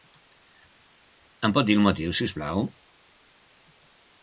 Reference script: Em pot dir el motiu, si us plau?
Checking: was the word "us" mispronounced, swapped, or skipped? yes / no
no